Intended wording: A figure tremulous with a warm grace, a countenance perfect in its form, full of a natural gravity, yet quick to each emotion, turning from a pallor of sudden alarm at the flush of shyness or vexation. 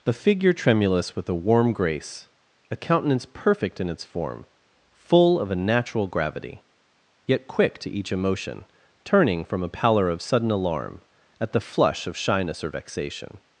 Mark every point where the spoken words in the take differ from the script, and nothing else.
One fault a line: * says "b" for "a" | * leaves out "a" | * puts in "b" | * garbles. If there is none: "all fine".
all fine